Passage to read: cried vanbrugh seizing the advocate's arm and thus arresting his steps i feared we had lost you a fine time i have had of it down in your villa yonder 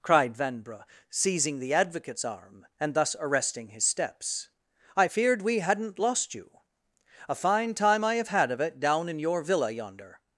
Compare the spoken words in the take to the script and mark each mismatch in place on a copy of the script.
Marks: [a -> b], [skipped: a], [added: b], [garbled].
cried vanbrugh seizing the advocate's arm and thus arresting his steps i feared we [had -> hadn't] lost you a fine time i have had of it down in your villa yonder